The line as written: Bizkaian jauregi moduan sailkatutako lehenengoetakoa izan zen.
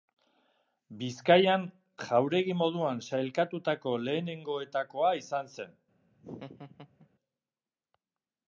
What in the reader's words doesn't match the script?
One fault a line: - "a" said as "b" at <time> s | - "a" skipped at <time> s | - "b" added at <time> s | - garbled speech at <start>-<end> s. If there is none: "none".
none